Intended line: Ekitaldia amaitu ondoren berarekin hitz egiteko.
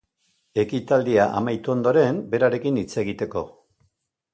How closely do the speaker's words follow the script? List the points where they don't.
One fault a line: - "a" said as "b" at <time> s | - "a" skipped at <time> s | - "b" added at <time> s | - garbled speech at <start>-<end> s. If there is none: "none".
none